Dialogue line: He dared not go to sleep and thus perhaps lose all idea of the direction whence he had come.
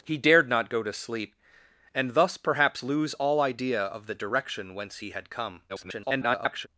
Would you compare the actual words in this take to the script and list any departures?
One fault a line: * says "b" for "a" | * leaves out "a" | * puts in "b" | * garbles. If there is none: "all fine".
* garbles